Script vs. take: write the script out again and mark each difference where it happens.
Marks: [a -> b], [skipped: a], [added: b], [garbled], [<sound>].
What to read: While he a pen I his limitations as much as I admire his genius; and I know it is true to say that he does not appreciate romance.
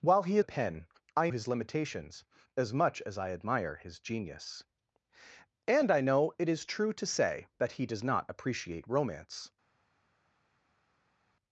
While he a pen I his limitations as much as I admire his genius; and I know it is true to say that he does not appreciate romance.